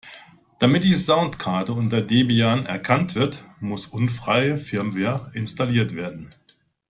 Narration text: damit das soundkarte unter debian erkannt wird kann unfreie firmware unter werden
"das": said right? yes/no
no